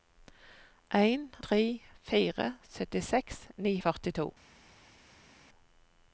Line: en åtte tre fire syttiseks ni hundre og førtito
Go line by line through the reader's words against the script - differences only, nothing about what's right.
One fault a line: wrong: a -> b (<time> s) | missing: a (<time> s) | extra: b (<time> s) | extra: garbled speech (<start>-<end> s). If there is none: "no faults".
missing: åtte (1.3 s)
missing: hundre (3.7 s)